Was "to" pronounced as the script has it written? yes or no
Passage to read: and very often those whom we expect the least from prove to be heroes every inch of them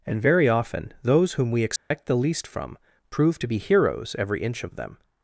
yes